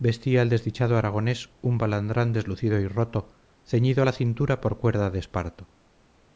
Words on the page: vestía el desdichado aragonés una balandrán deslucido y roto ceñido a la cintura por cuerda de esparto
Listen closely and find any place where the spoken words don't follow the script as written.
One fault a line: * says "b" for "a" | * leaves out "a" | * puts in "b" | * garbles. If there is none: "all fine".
* says "un" for "una"